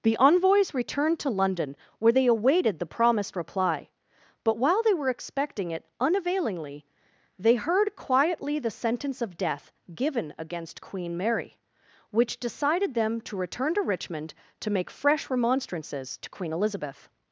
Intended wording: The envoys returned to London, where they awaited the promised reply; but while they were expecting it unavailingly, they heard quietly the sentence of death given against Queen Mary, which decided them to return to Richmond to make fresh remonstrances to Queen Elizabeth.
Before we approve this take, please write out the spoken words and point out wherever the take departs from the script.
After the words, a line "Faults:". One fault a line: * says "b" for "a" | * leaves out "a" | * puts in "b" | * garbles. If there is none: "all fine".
The envoys returned to London, where they awaited the promised reply; but while they were expecting it unavailingly, they heard quietly the sentence of death given against Queen Mary, which decided them to return to Richmond to make fresh remonstrances to Queen Elizabeth.
Faults:
all fine